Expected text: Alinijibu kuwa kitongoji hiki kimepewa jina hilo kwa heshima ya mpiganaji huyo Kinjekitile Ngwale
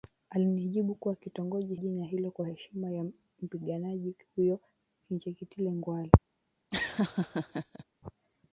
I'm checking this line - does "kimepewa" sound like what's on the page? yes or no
no